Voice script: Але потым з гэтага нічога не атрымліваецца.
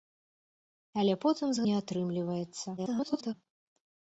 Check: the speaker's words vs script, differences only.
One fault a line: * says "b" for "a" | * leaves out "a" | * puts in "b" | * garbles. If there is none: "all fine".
* leaves out "гэтага нічога"
* garbles